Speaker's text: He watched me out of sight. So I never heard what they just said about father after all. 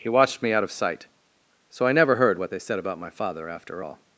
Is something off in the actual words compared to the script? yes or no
yes